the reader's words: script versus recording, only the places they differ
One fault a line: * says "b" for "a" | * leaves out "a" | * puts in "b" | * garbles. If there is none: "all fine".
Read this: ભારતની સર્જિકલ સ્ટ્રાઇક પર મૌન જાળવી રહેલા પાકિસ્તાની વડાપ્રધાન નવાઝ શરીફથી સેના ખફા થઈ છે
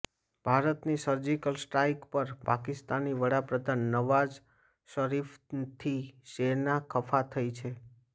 * leaves out "મૌન જાળવી રહેલા"